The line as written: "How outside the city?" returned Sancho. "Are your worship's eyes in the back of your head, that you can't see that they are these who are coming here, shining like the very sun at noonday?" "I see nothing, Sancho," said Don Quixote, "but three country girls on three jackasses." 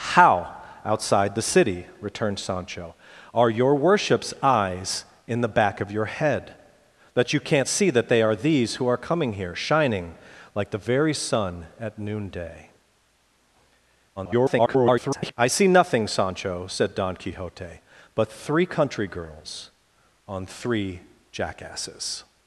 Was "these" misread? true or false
false